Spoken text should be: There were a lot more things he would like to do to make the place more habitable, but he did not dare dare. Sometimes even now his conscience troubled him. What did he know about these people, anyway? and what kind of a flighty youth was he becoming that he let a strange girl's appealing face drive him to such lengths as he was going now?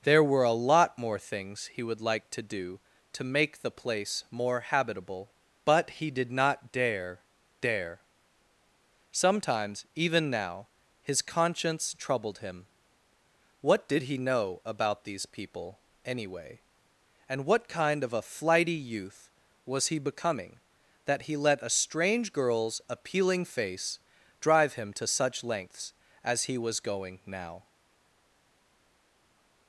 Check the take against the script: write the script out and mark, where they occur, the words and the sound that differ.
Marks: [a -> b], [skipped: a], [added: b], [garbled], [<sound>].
There were a lot more things he would like to do to make the place more habitable, but he did not dare dare. Sometimes even now his conscience troubled him. What did he know about these people, anyway? and what kind of a flighty youth was he becoming that he let a strange girl's appealing face drive him to such lengths as he was going now?